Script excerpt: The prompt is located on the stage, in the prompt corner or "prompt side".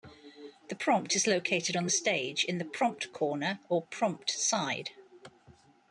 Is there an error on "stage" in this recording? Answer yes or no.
no